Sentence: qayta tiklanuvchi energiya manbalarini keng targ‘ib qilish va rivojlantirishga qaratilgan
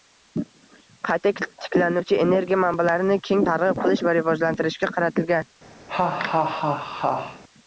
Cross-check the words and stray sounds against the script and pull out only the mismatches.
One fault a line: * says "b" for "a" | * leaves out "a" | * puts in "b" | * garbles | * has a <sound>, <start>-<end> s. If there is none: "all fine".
* has a laugh, 5.9-7.4 s